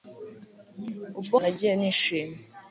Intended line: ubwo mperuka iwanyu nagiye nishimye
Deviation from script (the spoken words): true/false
true